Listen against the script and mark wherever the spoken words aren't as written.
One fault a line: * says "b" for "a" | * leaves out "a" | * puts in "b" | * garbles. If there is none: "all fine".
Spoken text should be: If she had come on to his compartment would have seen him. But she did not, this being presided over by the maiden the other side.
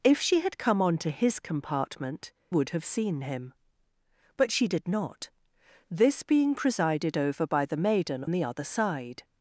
all fine